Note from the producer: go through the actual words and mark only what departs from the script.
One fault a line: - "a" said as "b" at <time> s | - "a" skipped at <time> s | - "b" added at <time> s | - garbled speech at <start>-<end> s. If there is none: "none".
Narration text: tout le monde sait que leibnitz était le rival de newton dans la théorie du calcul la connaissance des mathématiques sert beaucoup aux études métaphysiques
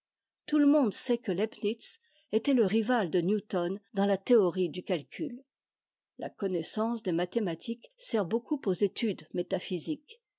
none